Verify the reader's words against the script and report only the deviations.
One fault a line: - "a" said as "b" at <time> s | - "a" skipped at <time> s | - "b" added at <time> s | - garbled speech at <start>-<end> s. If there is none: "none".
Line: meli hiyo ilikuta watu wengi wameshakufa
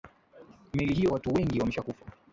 - "ilikuta" skipped at 1.1 s